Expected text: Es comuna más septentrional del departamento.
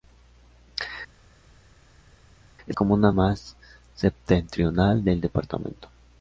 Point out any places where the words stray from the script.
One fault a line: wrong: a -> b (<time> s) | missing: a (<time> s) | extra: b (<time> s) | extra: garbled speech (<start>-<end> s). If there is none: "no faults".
no faults